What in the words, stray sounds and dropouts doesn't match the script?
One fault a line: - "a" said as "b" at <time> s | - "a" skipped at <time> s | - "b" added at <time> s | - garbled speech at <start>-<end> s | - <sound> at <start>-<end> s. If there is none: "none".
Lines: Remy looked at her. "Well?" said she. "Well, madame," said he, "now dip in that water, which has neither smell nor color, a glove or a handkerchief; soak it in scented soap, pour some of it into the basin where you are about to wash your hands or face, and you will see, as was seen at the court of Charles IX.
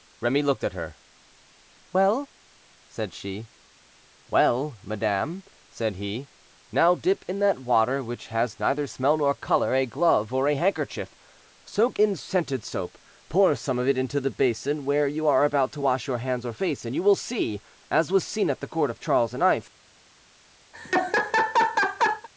- "it" skipped at 12.0 s
- laugh at 20.7-22.3 s